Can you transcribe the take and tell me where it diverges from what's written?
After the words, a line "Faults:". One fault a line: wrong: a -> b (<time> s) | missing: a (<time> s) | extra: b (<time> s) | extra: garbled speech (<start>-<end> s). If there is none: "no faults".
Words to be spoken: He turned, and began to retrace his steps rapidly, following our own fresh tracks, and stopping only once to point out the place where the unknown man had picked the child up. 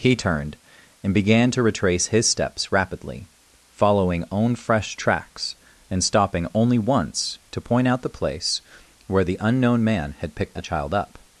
He turned, and began to retrace his steps rapidly, following own fresh tracks, and stopping only once to point out the place where the unknown man had picked the child up.
Faults:
missing: our (4.2 s)